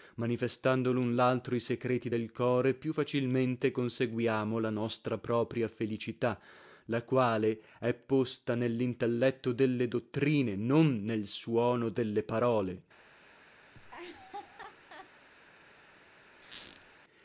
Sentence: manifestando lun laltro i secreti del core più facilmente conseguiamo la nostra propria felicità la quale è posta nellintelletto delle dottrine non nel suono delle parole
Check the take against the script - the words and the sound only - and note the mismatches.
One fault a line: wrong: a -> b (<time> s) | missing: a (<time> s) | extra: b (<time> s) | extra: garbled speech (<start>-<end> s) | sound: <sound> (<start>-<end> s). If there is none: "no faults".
sound: laugh (13.7-15.1 s)
sound: squeak (16.4-16.9 s)